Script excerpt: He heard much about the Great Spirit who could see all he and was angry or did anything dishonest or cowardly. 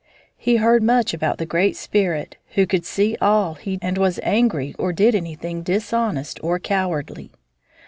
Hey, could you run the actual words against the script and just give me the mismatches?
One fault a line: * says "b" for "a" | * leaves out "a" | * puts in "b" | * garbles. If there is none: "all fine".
all fine